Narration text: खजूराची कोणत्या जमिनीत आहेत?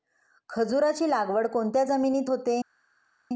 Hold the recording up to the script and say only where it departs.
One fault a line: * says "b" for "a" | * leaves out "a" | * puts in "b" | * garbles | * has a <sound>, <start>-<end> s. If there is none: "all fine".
* puts in "लागवड"
* says "होते" for "आहेत"